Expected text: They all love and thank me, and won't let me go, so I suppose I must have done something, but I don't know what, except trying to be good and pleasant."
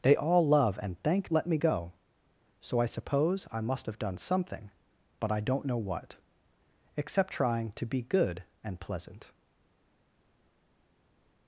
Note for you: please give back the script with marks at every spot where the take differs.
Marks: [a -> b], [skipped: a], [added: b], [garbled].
They all love and thank [skipped: me, and won't] let me go, so I suppose I must have done something, but I don't know what, except trying to be good and pleasant."